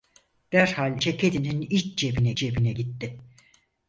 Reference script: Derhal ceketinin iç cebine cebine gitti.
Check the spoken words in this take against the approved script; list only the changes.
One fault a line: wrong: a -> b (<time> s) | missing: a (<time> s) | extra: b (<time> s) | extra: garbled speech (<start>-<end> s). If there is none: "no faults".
no faults